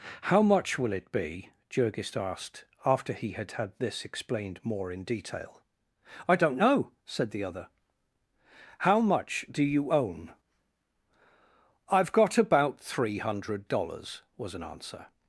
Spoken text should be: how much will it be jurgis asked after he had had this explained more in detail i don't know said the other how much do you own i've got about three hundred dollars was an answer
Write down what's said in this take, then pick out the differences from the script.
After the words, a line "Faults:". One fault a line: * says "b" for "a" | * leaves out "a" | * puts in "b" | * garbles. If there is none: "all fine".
how much will it be jurgis asked after he had had this explained more in detail i don't know said the other how much do you own i've got about three hundred dollars was an answer
Faults:
all fine